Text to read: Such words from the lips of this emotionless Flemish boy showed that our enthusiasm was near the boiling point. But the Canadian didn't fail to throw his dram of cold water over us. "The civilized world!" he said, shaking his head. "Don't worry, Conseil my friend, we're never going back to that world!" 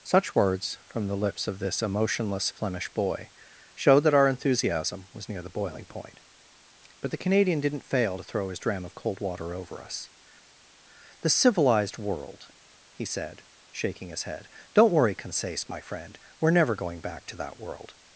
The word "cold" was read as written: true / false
true